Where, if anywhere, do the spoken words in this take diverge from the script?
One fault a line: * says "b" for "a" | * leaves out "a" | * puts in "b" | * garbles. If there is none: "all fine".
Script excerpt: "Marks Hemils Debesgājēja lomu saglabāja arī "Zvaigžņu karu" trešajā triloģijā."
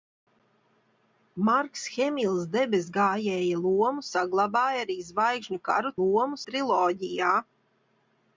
* says "lomu" for "trešajā"